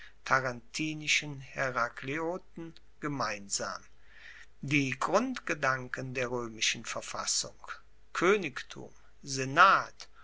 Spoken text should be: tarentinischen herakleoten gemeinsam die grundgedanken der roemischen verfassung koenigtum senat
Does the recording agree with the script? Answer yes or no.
yes